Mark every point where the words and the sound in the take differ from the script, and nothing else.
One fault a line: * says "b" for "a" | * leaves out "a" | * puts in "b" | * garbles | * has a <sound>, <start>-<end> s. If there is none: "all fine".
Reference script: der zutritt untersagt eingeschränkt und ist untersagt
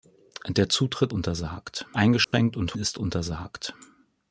* has a dropout, 2.2-2.3 s